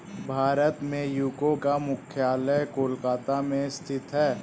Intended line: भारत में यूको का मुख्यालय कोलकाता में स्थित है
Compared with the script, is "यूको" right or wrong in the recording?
right